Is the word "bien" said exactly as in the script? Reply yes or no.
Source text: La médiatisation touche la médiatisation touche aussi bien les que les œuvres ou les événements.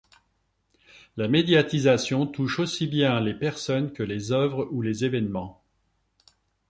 yes